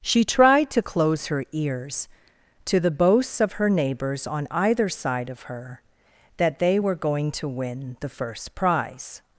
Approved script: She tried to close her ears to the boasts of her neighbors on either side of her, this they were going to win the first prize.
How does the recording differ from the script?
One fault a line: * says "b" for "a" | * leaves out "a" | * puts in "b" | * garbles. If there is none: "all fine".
* says "that" for "this"